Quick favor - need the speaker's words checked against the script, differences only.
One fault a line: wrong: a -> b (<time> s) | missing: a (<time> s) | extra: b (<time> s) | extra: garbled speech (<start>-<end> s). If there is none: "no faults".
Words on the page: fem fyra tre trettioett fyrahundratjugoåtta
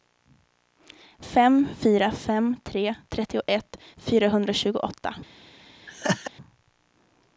extra: fem (2.1 s)